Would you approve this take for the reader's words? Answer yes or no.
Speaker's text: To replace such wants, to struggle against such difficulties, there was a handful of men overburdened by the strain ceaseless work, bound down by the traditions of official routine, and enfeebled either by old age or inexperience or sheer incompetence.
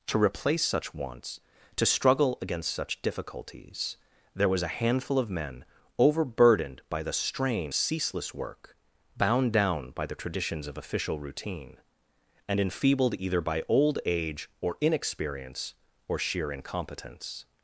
yes